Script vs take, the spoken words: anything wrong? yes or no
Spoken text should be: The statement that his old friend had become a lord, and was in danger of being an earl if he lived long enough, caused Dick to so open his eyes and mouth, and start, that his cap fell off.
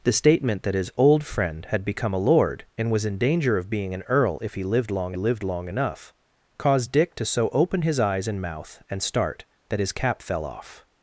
yes